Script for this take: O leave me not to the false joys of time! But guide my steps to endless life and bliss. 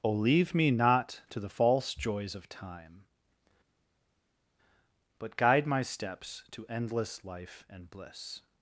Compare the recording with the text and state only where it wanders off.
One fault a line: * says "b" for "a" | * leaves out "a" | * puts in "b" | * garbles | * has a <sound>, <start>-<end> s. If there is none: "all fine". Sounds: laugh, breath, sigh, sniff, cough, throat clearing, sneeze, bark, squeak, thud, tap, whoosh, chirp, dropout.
all fine